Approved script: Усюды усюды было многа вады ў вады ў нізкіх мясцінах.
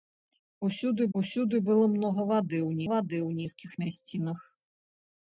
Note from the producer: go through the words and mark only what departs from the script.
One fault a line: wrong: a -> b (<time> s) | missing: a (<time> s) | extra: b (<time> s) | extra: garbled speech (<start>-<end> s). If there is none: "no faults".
no faults